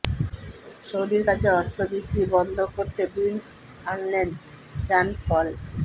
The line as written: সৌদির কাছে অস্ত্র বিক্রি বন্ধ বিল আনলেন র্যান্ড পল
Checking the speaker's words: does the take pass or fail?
fail